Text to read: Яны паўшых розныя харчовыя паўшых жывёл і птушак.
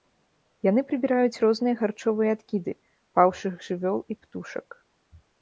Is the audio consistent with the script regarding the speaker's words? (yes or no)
no